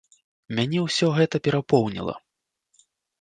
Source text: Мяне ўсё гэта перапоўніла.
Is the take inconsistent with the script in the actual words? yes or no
no